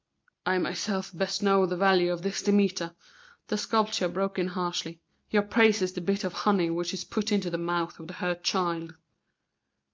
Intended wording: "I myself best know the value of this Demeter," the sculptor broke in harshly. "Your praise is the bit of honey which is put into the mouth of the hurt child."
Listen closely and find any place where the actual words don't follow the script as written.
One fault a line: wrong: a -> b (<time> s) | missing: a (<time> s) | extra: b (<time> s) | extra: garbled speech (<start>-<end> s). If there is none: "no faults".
no faults